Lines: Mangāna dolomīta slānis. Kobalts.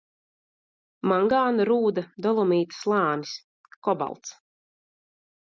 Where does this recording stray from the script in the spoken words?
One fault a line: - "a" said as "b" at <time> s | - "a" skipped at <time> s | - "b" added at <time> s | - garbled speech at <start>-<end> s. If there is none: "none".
- "rūda" added at 1.7 s